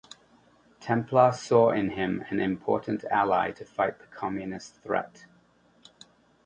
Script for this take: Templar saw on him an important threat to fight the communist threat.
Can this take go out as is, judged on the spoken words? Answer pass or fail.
fail